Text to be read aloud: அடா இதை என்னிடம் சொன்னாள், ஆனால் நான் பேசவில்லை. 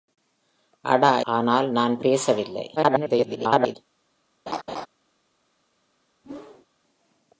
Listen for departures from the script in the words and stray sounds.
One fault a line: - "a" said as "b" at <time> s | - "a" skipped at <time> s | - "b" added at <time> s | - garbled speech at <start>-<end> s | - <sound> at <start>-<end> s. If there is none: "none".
- "இதை என்னிடம் சொன்னாள்" skipped at 1.2 s
- garbled speech at 2.8-3.8 s
- laugh at 4.5-4.9 s
- whoosh at 6.2-6.7 s